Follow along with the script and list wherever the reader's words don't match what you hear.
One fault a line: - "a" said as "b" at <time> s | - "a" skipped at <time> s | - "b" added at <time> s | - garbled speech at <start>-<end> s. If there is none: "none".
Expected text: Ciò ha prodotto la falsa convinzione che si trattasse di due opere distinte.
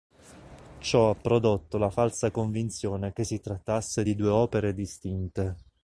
none